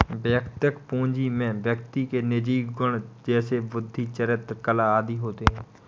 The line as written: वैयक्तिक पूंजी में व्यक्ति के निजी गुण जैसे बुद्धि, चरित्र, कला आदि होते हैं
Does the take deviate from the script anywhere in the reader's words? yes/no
no